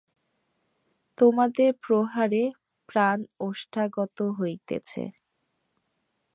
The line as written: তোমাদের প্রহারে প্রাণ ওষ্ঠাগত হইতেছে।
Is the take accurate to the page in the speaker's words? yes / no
yes